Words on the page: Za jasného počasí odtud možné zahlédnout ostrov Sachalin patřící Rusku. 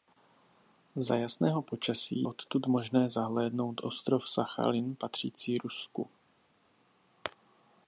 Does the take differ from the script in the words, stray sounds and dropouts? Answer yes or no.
no